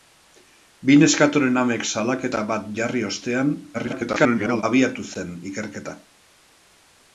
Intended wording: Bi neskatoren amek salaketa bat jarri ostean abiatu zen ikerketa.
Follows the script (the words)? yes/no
no